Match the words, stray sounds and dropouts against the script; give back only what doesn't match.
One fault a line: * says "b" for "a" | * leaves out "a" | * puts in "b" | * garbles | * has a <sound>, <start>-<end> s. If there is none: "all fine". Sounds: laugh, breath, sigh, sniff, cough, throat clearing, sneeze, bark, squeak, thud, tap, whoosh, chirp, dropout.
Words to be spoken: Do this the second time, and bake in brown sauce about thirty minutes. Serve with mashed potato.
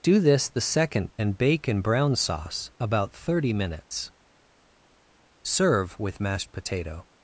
* leaves out "time"